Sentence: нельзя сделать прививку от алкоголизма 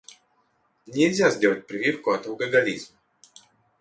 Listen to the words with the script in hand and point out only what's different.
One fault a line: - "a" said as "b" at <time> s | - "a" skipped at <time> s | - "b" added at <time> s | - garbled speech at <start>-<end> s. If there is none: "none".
none